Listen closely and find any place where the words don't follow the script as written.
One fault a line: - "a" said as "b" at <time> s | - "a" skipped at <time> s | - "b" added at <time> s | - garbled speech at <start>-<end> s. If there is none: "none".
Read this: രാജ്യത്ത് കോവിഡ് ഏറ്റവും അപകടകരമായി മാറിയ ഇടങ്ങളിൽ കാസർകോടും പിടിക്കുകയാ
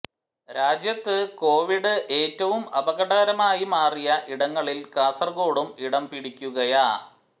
- "ഇടം" added at 5.8 s